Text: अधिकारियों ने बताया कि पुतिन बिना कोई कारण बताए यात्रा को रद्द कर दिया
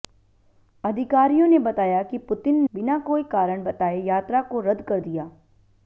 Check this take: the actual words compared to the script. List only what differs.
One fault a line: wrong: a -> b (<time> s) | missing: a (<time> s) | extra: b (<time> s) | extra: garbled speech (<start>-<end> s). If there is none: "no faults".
no faults